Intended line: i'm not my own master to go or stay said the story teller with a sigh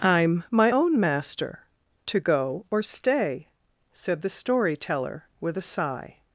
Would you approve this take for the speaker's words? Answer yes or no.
no